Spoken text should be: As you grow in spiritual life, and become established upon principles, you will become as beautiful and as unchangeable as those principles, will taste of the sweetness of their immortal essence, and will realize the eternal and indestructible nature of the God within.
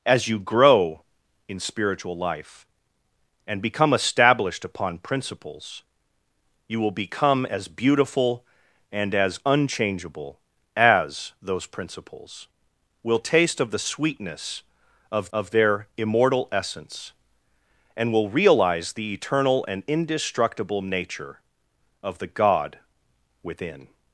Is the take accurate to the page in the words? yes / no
no